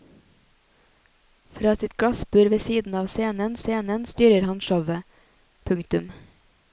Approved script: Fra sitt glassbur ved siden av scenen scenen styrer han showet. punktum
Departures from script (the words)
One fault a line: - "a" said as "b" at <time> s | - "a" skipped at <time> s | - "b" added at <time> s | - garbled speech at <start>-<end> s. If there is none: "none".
none